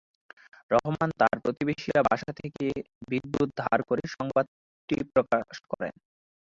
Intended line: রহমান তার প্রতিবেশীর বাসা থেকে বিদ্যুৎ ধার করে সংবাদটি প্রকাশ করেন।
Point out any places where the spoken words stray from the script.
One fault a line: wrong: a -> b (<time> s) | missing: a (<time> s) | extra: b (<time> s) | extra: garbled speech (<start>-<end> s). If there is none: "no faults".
no faults